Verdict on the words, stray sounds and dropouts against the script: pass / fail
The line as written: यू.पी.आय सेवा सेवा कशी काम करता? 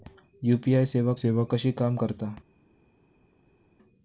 pass